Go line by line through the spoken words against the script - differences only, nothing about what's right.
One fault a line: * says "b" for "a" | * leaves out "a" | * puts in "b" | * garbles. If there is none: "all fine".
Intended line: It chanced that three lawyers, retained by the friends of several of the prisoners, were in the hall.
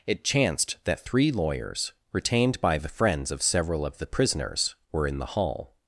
all fine